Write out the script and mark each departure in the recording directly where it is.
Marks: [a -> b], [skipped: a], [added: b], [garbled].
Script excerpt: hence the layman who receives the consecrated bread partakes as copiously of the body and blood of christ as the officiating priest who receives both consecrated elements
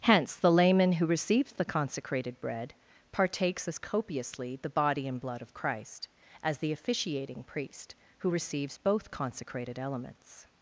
hence the layman who receives the consecrated bread partakes as copiously [skipped: of] the body and blood of christ as the officiating priest who receives both consecrated elements